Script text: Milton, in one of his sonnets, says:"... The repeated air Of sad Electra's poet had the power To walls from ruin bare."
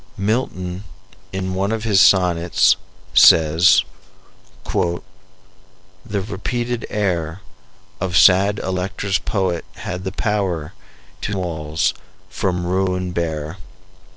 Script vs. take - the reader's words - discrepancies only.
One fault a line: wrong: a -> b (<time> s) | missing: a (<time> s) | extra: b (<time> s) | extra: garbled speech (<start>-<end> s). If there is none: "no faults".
no faults